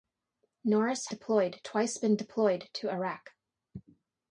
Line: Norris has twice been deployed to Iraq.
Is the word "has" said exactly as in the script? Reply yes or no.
no